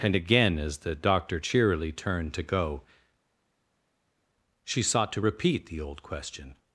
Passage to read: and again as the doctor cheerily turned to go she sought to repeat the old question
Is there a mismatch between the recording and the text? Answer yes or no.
no